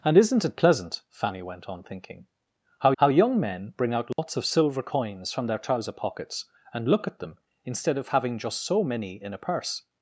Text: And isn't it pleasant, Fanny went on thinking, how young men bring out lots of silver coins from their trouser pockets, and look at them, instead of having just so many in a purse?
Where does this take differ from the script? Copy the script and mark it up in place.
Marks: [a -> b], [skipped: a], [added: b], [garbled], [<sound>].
And isn't it pleasant, Fanny went on thinking, how [added: how] young men bring out lots [dropout] of silver coins from their trouser pockets, and look at them, instead of having just so many in a purse?